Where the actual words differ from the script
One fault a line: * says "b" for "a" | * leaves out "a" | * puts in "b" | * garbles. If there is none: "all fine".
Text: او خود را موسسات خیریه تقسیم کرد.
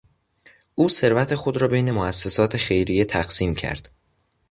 * puts in "ثروت"
* puts in "بین"